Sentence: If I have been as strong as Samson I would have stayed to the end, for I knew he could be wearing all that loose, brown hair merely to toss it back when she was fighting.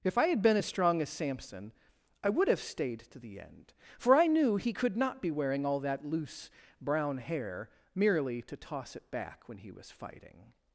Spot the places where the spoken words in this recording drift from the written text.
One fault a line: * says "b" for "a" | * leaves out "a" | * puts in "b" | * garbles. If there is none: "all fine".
* says "had" for "have"
* puts in "not"
* says "he" for "she"